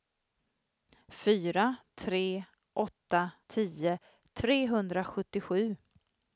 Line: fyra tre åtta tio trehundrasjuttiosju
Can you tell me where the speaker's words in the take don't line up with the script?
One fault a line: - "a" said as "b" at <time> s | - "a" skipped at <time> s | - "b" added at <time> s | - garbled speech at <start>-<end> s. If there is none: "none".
none